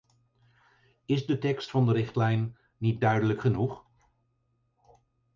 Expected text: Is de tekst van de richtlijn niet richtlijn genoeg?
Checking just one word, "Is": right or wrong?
right